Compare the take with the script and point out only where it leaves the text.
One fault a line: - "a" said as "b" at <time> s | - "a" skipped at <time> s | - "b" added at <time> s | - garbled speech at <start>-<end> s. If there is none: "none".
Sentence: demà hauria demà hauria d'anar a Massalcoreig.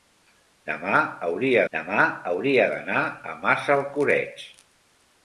none